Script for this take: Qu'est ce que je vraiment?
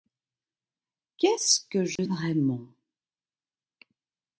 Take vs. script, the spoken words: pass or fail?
pass